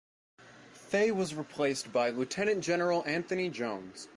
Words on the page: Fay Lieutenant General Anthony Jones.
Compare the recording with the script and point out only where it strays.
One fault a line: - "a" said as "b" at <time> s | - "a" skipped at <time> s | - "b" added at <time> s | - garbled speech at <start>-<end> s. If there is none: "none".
- "was replaced by" added at 1.1 s